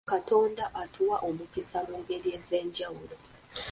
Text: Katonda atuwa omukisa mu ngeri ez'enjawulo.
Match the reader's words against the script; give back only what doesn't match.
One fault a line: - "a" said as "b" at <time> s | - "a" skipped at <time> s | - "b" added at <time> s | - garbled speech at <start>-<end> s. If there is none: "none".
none